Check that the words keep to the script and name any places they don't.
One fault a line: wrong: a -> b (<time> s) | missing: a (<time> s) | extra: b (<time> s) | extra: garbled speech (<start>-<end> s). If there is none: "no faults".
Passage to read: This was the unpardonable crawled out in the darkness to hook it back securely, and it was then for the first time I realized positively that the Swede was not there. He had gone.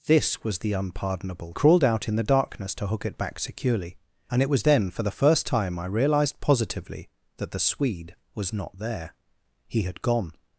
no faults